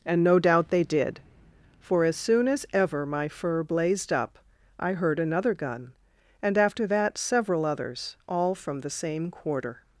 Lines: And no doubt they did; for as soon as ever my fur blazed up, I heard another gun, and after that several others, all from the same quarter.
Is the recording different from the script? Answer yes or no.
no